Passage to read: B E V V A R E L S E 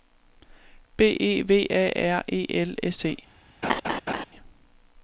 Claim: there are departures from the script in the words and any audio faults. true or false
true